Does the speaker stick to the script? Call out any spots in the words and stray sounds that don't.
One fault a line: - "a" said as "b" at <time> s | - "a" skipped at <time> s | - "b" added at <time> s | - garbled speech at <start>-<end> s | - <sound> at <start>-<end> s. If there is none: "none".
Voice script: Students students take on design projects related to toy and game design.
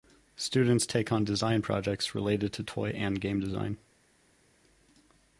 - "students" skipped at 0.9 s